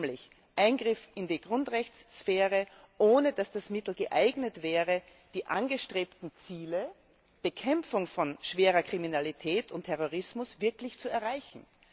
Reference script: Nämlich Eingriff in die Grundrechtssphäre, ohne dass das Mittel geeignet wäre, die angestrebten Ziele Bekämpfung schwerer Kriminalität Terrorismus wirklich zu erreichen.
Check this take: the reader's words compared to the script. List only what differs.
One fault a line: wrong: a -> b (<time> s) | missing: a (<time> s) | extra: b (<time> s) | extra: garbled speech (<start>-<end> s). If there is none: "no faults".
extra: von (8.1 s)
extra: und (9.7 s)